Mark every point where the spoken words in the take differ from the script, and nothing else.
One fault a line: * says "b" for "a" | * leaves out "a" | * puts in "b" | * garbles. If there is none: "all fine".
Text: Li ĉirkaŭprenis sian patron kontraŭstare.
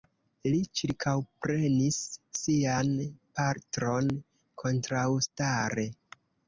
all fine